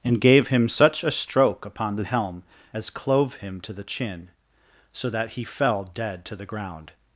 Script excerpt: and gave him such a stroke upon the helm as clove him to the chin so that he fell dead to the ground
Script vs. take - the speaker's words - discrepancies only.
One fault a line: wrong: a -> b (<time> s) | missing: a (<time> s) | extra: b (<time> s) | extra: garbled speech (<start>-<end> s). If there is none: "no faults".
no faults